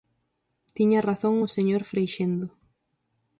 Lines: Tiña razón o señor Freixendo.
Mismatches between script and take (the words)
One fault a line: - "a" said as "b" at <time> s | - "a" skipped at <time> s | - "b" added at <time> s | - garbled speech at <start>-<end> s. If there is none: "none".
none